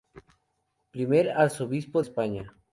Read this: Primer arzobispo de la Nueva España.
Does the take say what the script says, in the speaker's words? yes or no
no